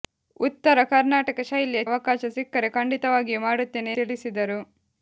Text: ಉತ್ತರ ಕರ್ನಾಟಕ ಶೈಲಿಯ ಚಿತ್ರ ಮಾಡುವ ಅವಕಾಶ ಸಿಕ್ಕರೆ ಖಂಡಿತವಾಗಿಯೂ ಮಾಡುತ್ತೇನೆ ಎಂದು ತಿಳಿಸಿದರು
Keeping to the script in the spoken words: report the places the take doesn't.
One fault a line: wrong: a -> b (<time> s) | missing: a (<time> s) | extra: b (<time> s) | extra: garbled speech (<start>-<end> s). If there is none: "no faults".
missing: ಚಿತ್ರ ಮಾಡುವ (1.8 s)
missing: ಎಂದು (3.9 s)